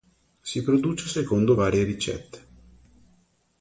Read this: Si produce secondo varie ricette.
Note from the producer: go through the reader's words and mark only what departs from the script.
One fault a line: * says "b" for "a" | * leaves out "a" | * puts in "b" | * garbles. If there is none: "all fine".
all fine